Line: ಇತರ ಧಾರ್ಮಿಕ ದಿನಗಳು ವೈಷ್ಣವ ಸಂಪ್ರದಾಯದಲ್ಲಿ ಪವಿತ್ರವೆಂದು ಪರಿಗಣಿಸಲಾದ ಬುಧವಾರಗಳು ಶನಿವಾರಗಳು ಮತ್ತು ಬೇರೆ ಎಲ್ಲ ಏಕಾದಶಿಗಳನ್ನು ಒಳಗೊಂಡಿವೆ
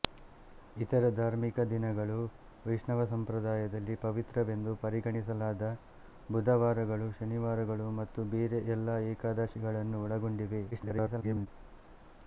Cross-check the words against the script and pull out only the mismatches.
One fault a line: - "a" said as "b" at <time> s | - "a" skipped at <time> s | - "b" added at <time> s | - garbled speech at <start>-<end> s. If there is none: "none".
- garbled speech at 10.7-11.5 s